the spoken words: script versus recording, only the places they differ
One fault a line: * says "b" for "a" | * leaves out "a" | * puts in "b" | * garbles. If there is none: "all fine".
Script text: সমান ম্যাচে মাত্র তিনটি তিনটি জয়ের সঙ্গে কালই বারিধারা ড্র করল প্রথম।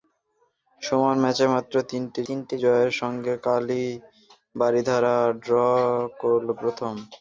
all fine